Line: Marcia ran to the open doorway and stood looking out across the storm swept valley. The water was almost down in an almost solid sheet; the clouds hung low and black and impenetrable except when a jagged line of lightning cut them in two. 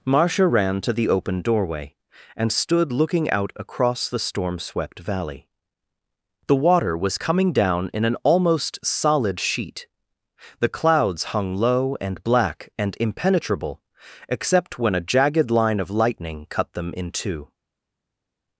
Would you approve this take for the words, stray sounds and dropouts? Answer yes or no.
no